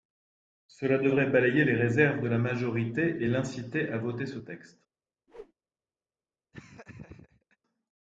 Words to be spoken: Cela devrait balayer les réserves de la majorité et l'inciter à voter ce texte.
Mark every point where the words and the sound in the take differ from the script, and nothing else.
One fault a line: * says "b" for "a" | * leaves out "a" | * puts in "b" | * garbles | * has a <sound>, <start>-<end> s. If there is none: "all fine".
* has a whoosh, 5.3-5.5 s
* has a laugh, 6.5-7.6 s